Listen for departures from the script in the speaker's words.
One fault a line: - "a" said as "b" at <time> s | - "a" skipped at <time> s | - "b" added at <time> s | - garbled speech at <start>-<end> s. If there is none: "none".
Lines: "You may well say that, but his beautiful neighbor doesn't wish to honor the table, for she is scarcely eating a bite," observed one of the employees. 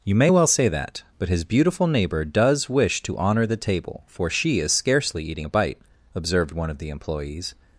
- "doesn't" said as "does" at 2.2 s